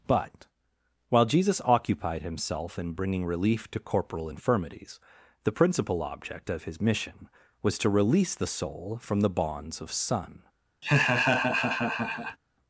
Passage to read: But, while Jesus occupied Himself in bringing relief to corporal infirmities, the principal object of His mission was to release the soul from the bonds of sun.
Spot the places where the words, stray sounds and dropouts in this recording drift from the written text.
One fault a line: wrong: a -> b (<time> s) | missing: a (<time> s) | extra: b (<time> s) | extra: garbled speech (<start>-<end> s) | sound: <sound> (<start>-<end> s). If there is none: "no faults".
sound: laugh (10.8-12.4 s)